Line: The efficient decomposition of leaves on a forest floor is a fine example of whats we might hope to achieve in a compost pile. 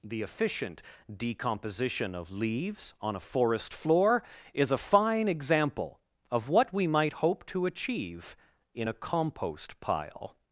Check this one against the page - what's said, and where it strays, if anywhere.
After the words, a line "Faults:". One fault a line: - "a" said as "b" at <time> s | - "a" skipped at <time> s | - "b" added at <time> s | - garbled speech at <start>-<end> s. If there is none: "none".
The efficient decomposition of leaves on a forest floor is a fine example of what we might hope to achieve in a compost pile.
Faults:
- "whats" said as "what" at 6.5 s